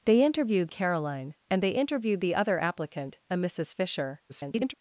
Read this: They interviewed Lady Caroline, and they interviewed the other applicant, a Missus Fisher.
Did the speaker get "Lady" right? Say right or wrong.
wrong